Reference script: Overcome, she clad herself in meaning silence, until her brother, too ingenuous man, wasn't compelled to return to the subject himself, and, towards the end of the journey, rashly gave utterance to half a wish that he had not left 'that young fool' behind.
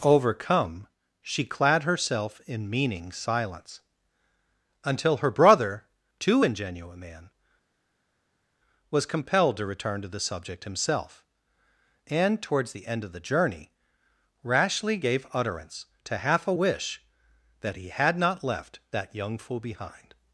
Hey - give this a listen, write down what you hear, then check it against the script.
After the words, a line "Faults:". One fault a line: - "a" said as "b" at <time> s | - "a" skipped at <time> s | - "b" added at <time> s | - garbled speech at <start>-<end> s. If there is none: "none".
Overcome, she clad herself in meaning silence, until her brother, too ingenuous man, was compelled to return to the subject himself, and, towards the end of the journey, rashly gave utterance to half a wish that he had not left 'that young fool' behind.
Faults:
- "wasn't" said as "was" at 8.9 s